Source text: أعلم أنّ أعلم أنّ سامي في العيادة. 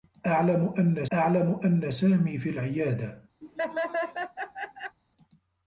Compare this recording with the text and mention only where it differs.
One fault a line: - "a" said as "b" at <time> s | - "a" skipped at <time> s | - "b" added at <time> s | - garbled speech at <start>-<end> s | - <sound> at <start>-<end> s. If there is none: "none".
- laugh at 3.4-5.0 s